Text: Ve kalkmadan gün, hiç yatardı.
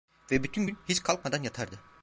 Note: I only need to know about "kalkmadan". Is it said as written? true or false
false